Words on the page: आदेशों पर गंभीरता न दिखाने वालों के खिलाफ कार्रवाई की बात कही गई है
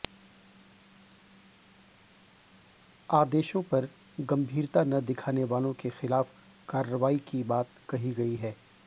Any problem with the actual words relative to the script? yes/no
no